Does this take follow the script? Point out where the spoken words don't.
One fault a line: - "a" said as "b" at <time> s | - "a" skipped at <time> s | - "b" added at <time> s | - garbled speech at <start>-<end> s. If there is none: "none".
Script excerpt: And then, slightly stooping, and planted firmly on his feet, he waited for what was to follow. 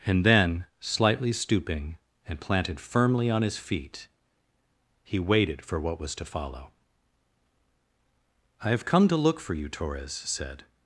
- "I have come to look for you Torres said" added at 8.6 s